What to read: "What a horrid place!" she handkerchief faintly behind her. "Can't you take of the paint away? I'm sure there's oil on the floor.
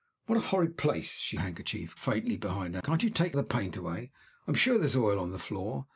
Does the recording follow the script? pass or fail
pass